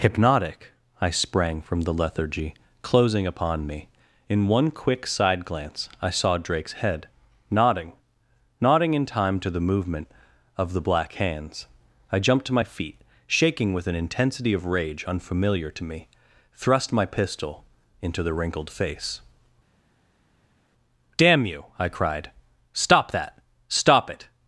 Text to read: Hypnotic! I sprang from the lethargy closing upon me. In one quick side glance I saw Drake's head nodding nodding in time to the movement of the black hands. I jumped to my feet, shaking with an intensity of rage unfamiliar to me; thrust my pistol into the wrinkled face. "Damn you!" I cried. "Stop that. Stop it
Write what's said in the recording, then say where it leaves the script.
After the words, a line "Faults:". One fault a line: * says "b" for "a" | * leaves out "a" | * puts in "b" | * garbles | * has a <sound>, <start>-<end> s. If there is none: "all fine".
Hypnotic! I sprang from the lethargy closing upon me. In one quick side glance I saw Drake's head nodding nodding in time to the movement of the black hands. I jumped to my feet, shaking with an intensity of rage unfamiliar to me; thrust my pistol into the wrinkled face. "Damn you!" I cried. "Stop that. Stop it
Faults:
all fine